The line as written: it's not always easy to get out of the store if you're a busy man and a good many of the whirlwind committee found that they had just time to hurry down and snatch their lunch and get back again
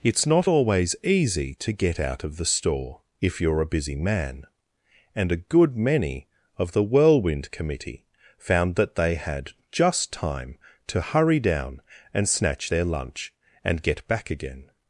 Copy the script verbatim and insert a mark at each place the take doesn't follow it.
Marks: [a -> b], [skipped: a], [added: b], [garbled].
it's not always easy to get out of the store if you're a busy man and a good many of the whirlwind committee found that they had just time to hurry down and snatch their lunch and get back again